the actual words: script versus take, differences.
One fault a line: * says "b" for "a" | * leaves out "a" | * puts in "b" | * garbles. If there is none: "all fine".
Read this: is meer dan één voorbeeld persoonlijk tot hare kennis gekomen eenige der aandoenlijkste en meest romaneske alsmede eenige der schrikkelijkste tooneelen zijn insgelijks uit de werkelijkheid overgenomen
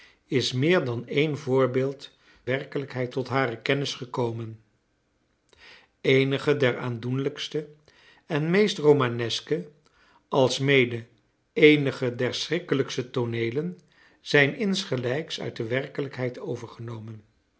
* says "werkelijkheid" for "persoonlijk"